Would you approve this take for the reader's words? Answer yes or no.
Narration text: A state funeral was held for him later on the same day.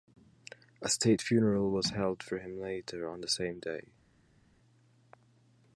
yes